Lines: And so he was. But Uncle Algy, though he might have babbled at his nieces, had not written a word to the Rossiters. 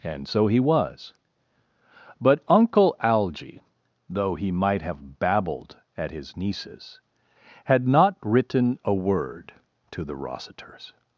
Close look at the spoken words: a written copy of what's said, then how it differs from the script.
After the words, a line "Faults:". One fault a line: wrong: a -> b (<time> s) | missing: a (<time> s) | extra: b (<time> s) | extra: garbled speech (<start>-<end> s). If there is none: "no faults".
And so he was. But Uncle Algy, though he might have babbled at his nieces, had not written a word to the Rossiters.
Faults:
no faults